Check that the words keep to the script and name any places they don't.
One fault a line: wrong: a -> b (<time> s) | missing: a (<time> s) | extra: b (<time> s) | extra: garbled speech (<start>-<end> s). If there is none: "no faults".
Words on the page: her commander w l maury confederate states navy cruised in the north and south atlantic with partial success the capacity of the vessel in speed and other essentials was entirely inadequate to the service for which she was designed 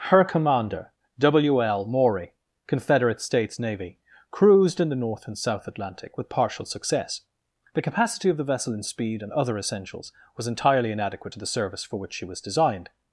no faults